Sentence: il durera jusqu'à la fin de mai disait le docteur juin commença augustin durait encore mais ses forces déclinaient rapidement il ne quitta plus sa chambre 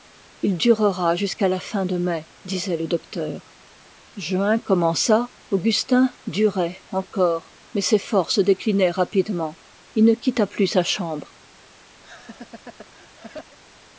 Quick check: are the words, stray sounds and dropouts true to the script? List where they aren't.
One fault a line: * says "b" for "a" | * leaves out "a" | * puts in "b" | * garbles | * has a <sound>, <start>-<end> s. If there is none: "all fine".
* has a laugh, 12.0-13.6 s